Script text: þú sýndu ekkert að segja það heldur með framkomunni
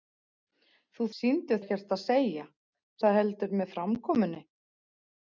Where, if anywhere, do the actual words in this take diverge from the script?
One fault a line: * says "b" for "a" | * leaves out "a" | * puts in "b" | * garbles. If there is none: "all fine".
all fine